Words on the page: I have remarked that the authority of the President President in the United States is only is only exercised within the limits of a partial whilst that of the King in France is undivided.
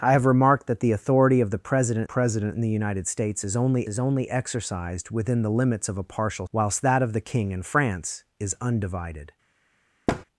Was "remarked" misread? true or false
false